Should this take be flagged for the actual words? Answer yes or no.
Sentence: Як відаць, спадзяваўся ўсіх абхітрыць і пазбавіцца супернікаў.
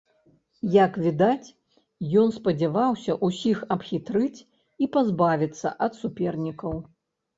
yes